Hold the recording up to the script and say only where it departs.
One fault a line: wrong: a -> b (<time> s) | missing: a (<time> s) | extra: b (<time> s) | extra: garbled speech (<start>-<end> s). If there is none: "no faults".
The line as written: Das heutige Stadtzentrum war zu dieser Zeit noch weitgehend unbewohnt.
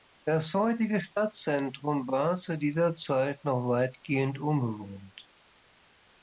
no faults